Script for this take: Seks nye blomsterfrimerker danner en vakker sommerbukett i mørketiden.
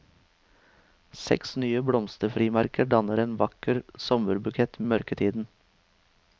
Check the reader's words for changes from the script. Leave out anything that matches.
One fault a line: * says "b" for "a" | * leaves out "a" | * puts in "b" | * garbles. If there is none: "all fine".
all fine